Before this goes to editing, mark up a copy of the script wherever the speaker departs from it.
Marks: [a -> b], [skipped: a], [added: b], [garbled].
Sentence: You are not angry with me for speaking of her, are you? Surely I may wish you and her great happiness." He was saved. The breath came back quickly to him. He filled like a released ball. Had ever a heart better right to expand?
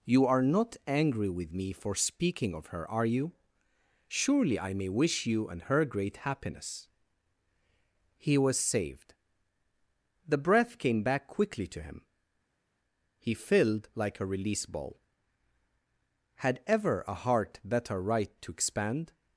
You are not angry with me for speaking of her, are you? Surely I may wish you and her great happiness." He was saved. The breath came back quickly to him. He filled like a [released -> release] ball. Had ever a heart better right to expand?